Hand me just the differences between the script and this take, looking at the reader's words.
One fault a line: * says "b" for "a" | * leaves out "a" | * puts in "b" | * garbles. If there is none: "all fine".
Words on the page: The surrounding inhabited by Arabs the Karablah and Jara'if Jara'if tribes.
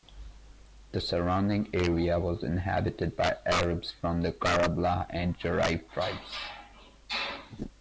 * puts in "area was"
* puts in "from"
* leaves out "Jara'if"